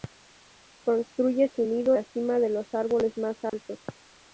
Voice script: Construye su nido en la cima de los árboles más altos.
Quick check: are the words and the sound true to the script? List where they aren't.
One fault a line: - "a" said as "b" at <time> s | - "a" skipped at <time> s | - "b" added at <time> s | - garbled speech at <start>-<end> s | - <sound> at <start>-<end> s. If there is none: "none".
- "en" skipped at 1.9 s
- dropout at 3.5-3.5 s